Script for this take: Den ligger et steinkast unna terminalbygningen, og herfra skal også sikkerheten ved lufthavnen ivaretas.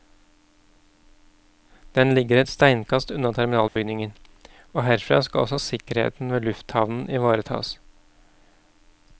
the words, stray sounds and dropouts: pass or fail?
fail